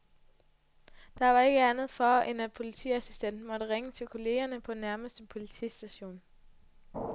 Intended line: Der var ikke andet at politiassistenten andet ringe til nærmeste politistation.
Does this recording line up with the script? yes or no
no